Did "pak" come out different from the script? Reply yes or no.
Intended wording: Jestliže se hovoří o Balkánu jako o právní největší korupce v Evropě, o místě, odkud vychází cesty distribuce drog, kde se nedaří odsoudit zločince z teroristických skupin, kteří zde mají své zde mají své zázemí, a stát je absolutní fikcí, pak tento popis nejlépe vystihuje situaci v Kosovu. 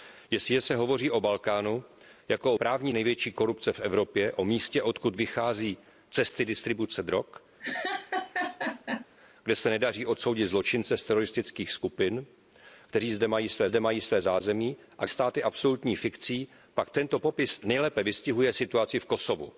no